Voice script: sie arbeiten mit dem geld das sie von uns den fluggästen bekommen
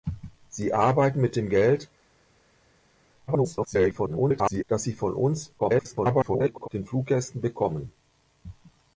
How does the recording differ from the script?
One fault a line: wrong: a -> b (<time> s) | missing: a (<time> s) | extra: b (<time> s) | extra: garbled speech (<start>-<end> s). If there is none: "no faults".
extra: garbled speech (3.3-4.6 s)
extra: garbled speech (5.6-6.7 s)